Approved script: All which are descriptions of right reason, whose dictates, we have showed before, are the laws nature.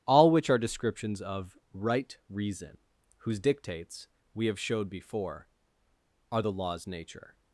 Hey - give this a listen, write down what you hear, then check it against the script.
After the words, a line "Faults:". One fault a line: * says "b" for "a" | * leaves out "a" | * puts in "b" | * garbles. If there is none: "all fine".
All which are descriptions of right reason, whose dictates, we have showed before, are the laws nature.
Faults:
all fine